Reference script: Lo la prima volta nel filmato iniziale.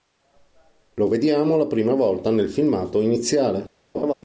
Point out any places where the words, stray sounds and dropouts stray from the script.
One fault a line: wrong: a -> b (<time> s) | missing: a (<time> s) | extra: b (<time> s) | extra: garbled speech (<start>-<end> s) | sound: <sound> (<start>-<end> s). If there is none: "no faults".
extra: vediamo (1.1 s)
sound: laugh (3.9-4.1 s)